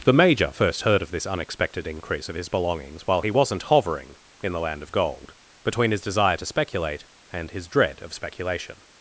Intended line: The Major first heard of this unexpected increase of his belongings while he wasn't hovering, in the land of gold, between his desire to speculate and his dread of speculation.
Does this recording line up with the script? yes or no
yes